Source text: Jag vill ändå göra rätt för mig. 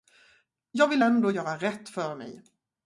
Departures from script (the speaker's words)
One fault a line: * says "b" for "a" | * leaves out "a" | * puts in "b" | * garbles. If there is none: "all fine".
all fine